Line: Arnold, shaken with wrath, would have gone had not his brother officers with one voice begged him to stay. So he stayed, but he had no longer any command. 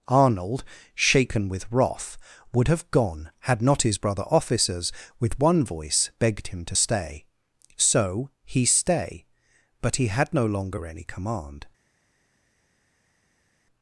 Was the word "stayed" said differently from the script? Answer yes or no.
yes